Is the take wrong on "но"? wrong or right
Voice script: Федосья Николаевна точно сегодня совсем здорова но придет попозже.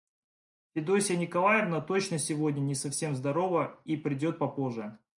wrong